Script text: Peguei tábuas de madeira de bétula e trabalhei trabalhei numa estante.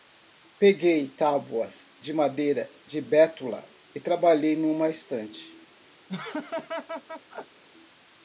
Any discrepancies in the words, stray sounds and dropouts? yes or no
yes